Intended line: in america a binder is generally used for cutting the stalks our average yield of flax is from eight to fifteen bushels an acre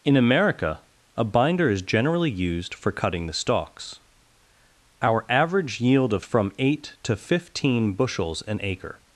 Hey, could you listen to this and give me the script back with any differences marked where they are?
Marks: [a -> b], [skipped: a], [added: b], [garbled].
in america a binder is generally used for cutting the stalks our average yield of [skipped: flax is] from eight to fifteen bushels an acre